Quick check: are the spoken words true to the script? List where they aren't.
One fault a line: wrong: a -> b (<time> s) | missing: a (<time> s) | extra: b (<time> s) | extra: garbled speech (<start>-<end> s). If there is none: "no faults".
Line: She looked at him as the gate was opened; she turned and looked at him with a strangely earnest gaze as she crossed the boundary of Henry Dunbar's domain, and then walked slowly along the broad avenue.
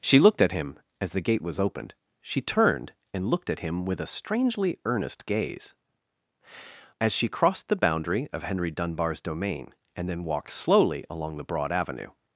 no faults